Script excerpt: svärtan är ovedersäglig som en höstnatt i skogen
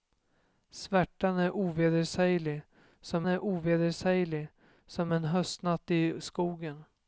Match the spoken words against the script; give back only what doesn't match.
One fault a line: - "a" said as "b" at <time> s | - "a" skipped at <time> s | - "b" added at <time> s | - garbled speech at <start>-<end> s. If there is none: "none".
- "är ovedersäglig som" added at 3.3 s